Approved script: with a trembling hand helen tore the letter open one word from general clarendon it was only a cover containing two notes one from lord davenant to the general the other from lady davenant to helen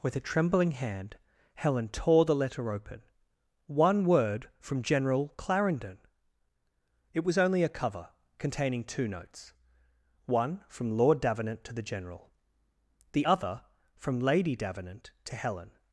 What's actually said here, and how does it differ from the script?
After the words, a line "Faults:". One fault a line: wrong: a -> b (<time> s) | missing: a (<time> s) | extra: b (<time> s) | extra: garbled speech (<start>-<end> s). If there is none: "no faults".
with a trembling hand helen tore the letter open one word from general clarendon it was only a cover containing two notes one from lord davenant to the general the other from lady davenant to helen
Faults:
no faults